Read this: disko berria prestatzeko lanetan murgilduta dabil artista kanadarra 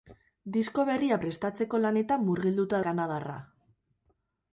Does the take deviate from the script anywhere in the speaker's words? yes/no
yes